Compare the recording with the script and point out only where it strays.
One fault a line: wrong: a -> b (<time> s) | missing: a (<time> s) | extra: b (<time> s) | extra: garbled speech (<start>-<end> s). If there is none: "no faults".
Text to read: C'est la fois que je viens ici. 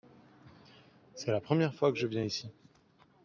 extra: première (1.4 s)